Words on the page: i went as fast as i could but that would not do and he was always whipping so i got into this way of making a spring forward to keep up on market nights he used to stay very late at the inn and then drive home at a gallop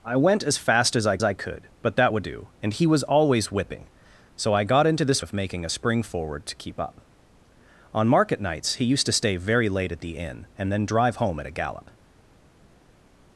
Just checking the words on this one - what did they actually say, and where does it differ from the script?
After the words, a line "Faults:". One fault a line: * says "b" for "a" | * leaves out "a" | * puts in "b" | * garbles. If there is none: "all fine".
i went as fast as i i could but that would do and he was always whipping so i got into this of making a spring forward to keep up on market nights he used to stay very late at the inn and then drive home at a gallop
Faults:
* puts in "i"
* leaves out "not"
* leaves out "way"